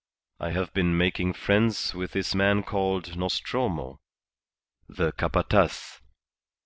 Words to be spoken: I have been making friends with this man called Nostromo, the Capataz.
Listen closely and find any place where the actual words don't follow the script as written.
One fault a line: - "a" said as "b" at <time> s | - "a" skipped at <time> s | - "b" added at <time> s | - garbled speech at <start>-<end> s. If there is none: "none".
none